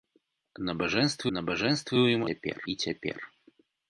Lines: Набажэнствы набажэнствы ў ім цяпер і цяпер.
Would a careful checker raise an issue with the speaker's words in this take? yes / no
no